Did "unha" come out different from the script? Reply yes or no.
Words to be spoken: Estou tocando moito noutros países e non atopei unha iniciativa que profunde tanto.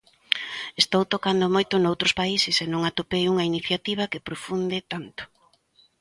no